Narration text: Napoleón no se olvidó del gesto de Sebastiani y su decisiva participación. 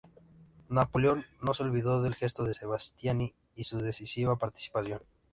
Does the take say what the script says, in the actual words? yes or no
yes